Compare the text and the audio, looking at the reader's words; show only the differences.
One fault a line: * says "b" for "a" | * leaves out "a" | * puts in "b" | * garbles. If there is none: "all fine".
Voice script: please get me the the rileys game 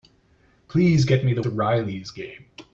all fine